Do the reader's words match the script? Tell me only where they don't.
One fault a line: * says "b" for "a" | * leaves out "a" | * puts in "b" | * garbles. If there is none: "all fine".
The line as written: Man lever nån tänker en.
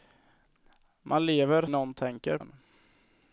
all fine